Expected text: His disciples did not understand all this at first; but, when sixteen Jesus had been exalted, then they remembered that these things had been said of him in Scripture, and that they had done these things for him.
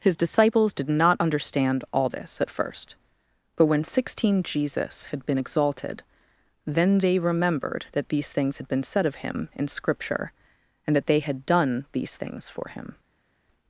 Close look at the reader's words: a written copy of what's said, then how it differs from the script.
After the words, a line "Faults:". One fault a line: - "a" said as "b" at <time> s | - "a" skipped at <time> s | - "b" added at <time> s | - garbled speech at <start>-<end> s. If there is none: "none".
His disciples did not understand all this at first; but, when sixteen Jesus had been exalted, then they remembered that these things had been said of him in Scripture, and that they had done these things for him.
Faults:
none